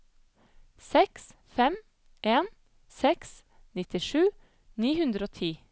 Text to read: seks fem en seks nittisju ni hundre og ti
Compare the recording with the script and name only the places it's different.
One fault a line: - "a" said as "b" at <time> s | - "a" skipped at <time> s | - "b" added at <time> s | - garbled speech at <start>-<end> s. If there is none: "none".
none